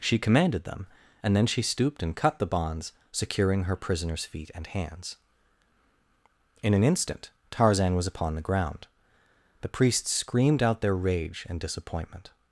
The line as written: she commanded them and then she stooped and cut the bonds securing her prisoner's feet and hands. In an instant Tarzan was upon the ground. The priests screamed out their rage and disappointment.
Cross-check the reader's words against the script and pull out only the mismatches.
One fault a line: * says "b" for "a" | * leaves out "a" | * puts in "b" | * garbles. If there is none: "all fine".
all fine